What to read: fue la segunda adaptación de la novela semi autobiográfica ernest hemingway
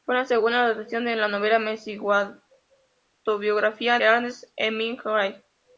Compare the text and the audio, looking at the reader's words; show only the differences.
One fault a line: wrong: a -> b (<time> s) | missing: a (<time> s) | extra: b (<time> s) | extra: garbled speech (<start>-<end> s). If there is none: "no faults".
no faults